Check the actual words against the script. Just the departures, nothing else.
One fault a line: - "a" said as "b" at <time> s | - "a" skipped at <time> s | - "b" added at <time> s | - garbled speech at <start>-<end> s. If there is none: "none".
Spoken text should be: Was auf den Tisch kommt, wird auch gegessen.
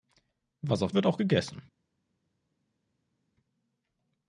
- "den Tisch kommt" skipped at 0.9 s